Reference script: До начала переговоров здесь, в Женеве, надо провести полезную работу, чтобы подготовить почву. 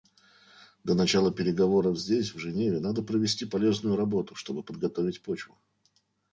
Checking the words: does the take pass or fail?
pass